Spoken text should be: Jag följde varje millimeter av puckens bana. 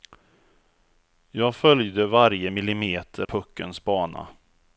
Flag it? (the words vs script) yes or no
yes